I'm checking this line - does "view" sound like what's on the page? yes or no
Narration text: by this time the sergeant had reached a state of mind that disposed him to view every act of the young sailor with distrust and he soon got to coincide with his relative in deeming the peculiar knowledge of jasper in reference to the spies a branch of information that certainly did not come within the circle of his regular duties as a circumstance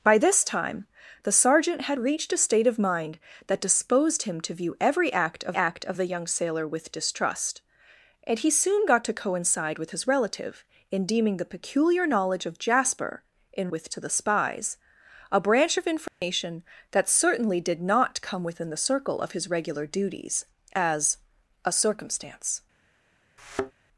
yes